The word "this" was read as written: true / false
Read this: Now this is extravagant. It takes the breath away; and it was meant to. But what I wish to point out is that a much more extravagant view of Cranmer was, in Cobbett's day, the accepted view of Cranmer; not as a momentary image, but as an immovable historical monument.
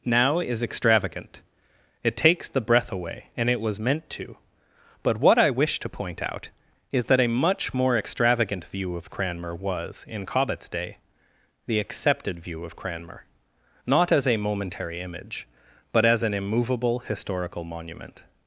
false